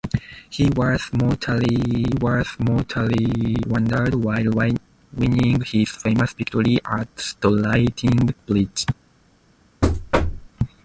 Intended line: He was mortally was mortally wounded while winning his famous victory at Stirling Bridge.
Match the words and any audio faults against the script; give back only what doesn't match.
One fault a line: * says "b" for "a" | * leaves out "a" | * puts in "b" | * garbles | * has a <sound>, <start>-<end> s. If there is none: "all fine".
* has a thud, 9.8-10.5 s